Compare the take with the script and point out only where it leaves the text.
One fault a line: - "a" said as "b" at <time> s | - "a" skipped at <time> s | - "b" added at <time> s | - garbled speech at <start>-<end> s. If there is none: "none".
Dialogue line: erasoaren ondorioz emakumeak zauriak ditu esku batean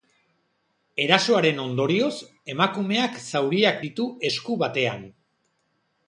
none